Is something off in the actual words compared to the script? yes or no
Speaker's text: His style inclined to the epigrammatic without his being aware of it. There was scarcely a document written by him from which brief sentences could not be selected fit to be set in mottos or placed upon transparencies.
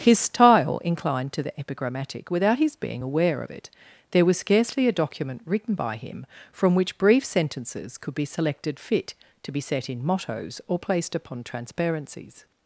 yes